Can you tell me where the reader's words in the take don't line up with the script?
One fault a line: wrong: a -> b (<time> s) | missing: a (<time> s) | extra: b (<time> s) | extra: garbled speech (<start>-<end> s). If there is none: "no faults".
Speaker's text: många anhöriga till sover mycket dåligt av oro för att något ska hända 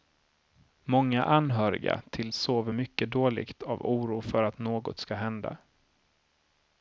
no faults